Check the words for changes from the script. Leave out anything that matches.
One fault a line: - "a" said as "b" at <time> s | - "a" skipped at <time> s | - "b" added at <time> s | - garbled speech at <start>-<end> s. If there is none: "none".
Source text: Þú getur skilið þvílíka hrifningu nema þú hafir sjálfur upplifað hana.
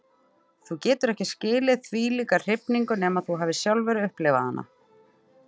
- "ekki" added at 1.1 s